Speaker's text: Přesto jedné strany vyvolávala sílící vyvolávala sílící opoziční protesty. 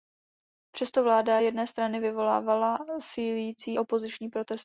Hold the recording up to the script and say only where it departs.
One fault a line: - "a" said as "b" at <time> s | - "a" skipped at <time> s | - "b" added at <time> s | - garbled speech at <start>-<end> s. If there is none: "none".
- "vláda" added at 1.0 s
- "vyvolávala sílící" skipped at 3.8 s